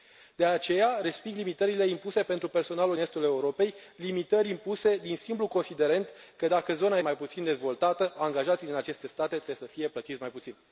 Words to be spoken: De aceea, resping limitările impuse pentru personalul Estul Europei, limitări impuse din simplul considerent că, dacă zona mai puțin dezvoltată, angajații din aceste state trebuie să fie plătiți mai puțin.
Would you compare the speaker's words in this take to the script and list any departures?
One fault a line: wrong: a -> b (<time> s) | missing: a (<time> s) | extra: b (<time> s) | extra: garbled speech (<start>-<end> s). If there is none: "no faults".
no faults